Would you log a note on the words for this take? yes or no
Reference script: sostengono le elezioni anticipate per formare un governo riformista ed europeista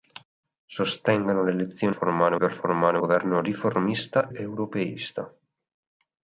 yes